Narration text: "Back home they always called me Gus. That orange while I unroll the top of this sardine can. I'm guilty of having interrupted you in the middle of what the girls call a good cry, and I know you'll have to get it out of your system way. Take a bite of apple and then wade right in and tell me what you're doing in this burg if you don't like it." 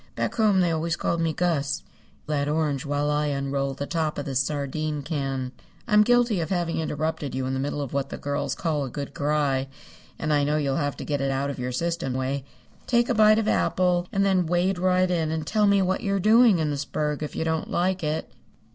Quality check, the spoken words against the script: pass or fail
pass